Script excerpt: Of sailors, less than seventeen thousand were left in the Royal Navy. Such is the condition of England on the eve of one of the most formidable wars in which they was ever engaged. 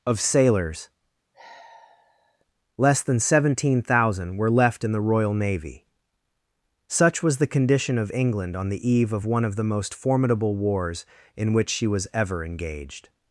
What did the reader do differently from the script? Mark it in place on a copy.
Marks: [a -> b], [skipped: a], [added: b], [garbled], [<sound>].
Of sailors, [sigh] less than seventeen thousand were left in the Royal Navy. Such [is -> was] the condition of England on the eve of one of the most formidable wars in which [they -> she] was ever engaged.